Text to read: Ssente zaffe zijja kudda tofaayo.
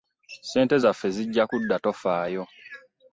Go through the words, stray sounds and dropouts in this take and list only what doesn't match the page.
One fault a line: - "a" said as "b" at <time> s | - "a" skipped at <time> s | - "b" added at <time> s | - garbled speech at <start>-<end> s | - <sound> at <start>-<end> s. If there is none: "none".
none